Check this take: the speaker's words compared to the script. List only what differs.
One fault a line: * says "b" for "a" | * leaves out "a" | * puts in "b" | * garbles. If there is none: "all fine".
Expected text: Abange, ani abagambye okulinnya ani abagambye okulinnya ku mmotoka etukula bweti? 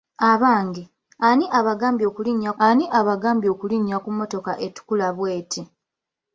all fine